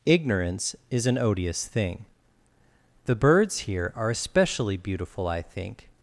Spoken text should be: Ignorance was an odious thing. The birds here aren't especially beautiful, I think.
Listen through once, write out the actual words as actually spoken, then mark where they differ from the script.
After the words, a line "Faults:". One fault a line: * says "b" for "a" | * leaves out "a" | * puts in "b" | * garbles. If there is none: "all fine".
Ignorance is an odious thing. The birds here are especially beautiful, I think.
Faults:
* says "is" for "was"
* says "are" for "aren't"